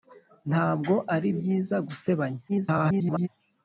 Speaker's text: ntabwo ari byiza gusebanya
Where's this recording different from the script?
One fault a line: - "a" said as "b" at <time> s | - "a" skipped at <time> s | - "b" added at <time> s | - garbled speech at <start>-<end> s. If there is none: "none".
- garbled speech at 2.5-3.3 s